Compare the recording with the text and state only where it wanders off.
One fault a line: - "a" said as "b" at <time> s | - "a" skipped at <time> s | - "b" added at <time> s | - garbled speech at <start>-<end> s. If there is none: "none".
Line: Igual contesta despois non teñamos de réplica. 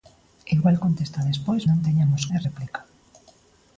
none